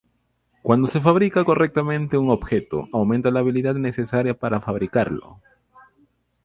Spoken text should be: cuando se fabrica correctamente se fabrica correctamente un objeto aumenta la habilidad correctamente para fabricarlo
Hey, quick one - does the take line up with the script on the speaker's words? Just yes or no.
no